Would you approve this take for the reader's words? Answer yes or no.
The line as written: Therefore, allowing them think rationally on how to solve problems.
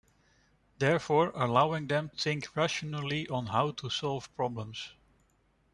yes